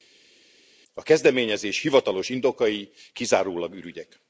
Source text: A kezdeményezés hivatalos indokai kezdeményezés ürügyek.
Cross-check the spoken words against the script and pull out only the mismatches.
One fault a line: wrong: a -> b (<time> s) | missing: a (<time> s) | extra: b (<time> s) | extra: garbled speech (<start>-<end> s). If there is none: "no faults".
wrong: kezdeményezés -> kizárólag (3.1 s)